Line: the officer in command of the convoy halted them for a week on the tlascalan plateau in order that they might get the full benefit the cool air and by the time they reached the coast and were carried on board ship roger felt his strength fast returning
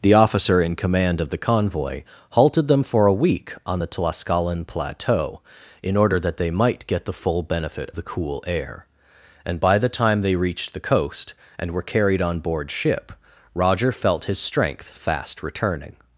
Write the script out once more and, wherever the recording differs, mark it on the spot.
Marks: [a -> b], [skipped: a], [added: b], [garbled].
the officer in command of the convoy halted them for a week on the tlascalan plateau in order that they might get the full benefit the cool air and by the time they reached the coast and were carried on board ship roger felt his strength fast returning